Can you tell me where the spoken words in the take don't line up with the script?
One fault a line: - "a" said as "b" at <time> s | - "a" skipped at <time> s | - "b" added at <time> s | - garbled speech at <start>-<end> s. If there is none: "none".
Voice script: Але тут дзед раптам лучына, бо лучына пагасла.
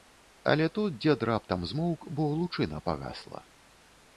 - "лучына" said as "змоўк" at 1.7 s